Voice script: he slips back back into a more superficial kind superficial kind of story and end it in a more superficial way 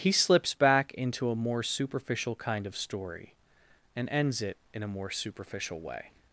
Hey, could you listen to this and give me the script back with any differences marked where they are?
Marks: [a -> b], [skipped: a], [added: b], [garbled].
he slips back [skipped: back] into a more superficial kind [skipped: superficial kind] of story and [end -> ends] it in a more superficial way